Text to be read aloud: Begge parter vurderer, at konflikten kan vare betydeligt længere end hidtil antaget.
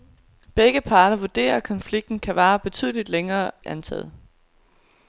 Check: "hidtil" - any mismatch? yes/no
yes